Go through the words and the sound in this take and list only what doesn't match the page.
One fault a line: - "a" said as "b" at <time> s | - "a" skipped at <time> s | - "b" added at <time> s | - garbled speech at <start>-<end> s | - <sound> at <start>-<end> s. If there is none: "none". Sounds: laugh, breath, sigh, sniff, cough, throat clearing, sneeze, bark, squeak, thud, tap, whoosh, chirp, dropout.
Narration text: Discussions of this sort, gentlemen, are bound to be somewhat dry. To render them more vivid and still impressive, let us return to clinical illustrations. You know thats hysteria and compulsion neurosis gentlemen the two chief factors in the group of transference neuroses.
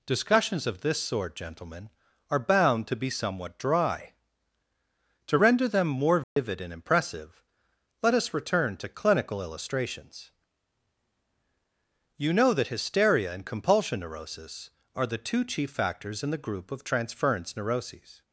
- dropout at 6.2-6.4 s
- "still" skipped at 6.7 s
- "thats" said as "that" at 12.5 s
- "gentlemen" said as "are" at 14.9 s